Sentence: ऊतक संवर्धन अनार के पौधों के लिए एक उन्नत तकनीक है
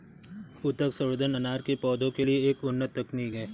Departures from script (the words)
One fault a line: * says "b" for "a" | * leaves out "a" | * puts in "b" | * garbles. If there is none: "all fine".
all fine